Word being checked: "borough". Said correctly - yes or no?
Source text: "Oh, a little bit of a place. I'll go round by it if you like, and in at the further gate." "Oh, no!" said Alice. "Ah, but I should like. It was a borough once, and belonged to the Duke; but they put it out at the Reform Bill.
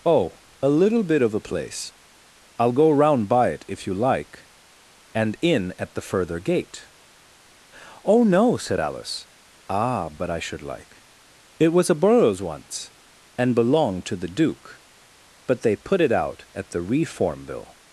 no